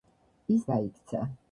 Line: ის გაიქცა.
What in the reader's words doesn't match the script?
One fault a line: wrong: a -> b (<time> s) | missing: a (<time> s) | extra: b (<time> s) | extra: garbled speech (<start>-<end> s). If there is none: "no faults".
no faults